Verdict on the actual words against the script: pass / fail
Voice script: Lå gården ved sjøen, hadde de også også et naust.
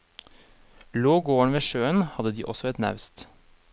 fail